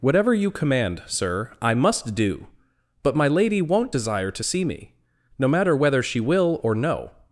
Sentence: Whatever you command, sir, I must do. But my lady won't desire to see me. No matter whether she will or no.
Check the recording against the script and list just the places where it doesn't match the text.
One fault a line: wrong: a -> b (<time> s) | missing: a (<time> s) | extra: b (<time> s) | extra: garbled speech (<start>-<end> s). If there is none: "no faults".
no faults